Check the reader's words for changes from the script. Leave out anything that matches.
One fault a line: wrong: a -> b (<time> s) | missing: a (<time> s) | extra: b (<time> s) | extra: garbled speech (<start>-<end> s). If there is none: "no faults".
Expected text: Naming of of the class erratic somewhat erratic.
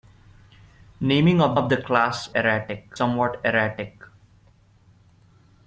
no faults